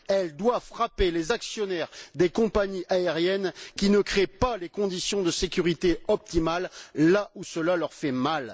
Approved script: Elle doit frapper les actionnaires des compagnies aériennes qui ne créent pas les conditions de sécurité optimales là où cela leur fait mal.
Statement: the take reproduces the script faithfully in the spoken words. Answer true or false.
true